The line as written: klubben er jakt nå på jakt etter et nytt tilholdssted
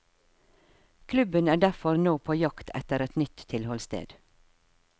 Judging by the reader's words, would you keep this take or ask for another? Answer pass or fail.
fail